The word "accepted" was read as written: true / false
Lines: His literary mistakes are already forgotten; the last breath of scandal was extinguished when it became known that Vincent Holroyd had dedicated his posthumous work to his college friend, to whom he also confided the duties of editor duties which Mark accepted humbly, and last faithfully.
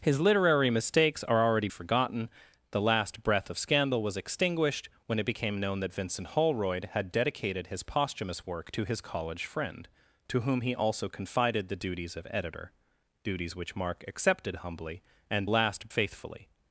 true